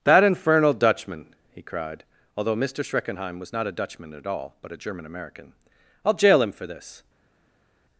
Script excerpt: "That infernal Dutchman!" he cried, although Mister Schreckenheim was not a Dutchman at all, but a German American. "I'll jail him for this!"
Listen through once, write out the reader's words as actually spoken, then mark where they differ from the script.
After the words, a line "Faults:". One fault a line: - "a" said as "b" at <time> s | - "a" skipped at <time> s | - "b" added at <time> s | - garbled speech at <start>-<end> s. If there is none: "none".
"That infernal Dutchman!" he cried, although Mister Schreckenheim was not a Dutchman at all, but a German American. "I'll jail him for this!"
Faults:
none